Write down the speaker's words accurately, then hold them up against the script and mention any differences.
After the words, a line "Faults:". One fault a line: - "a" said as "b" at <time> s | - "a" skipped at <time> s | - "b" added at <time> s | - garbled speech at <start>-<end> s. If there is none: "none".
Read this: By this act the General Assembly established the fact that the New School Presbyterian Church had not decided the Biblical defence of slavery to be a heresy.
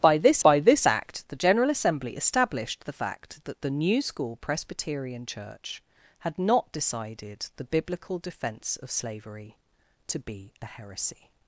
By this by this act the General Assembly established the fact that the New School Presbyterian Church had not decided the Biblical defence of slavery to be a heresy.
Faults:
- "by this" added at 0.4 s